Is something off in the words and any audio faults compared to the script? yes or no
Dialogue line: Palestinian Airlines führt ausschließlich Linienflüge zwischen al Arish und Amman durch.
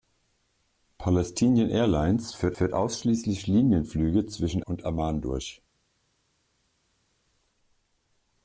yes